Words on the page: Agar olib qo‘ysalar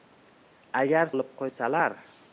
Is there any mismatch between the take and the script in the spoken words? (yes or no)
no